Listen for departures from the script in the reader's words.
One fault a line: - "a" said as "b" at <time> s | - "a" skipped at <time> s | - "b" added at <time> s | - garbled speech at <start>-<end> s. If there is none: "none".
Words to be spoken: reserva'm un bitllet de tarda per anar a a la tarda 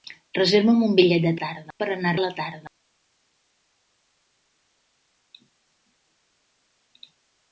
none